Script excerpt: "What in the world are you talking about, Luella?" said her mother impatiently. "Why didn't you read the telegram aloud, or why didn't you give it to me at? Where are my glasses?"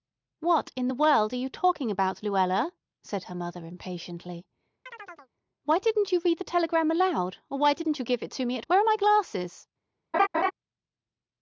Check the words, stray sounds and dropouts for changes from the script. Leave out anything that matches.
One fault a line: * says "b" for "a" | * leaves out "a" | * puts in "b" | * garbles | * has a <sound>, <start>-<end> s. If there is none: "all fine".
* has a chirp, 4.9-5.3 s
* has a laugh, 10.1-10.5 s